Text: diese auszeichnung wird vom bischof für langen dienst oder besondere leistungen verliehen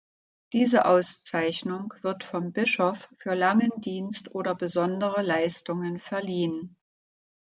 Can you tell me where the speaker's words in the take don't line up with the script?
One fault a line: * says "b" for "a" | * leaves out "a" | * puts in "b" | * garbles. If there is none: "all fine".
all fine